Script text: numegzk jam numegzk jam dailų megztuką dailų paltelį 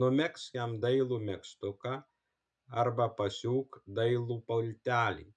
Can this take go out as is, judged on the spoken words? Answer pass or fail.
fail